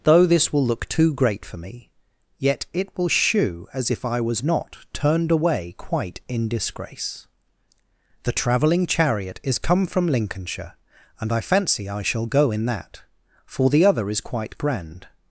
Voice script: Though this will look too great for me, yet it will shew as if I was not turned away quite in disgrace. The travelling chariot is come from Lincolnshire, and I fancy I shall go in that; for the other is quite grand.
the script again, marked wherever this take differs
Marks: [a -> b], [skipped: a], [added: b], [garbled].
Though this will look too great for me, yet it will shew as if I was not turned away quite in disgrace. The travelling chariot is come from Lincolnshire, and I fancy I shall go in that; for the other is quite grand.